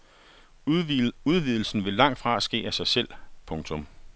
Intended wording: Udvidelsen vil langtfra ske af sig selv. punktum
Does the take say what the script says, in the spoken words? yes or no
yes